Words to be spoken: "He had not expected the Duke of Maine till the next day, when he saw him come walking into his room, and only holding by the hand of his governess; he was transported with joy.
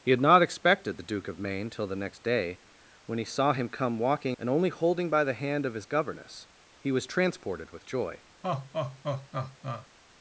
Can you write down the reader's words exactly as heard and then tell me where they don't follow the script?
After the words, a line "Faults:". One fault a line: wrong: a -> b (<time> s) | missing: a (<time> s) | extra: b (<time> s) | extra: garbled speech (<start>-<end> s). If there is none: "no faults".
"He had not expected the Duke of Maine till the next day, when he saw him come walking and only holding by the hand of his governess; he was transported with joy.
Faults:
missing: into his room (4.4 s)